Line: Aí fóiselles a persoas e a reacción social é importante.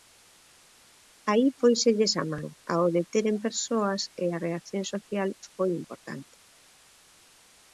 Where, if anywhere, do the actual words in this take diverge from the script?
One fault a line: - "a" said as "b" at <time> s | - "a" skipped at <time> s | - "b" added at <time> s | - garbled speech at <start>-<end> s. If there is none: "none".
- "man ao deteren" added at 2.3 s
- "é" said as "foi" at 5.5 s